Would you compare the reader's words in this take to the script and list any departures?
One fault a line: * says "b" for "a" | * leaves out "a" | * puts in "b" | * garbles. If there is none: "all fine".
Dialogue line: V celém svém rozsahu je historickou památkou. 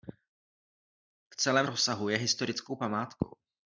* leaves out "svém"